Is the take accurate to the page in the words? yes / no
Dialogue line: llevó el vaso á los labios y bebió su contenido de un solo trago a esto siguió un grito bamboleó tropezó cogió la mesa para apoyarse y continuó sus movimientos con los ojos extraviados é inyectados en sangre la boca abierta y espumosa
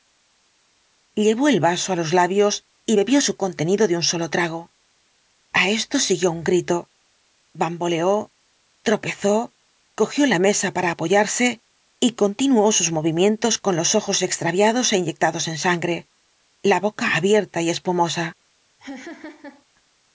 yes